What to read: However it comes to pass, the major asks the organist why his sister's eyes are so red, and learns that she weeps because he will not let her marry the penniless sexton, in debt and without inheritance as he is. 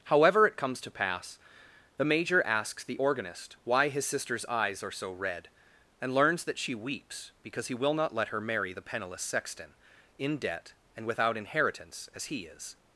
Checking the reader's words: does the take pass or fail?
pass